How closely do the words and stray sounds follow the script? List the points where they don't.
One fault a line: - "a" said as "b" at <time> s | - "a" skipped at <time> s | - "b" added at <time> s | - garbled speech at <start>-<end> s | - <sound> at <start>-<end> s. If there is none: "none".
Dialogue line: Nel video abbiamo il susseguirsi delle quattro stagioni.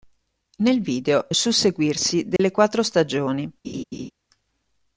- "abbiamo" skipped at 1.3 s
- dropout at 2.4-2.4 s
- laugh at 3.6-4.1 s